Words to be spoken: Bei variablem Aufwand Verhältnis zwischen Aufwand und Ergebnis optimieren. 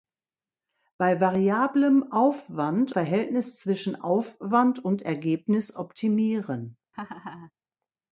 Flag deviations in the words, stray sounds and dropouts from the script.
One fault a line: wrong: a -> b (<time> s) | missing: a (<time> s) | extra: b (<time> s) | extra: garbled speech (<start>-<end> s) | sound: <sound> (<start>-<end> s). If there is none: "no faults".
sound: laugh (6.9-7.5 s)